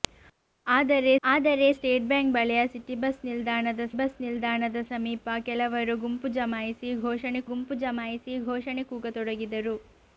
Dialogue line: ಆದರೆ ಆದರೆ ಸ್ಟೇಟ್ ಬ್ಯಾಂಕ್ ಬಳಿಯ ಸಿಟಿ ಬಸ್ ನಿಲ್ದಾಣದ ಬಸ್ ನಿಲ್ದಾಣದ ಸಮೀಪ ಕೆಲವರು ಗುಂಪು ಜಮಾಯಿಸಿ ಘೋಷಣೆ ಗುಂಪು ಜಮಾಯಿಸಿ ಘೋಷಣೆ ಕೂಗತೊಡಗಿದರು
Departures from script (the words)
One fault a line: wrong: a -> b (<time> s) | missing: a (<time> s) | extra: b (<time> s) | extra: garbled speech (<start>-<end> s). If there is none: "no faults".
no faults